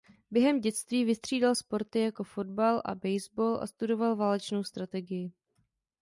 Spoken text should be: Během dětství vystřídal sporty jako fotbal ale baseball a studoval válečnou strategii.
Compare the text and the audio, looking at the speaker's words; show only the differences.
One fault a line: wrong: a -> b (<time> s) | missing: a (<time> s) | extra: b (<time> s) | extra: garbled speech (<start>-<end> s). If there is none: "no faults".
wrong: ale -> a (2.9 s)